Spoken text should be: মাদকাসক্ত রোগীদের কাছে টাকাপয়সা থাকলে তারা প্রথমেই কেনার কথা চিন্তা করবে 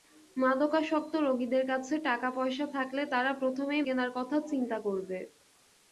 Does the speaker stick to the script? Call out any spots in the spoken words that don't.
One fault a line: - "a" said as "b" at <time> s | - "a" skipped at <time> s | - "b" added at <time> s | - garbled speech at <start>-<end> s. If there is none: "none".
none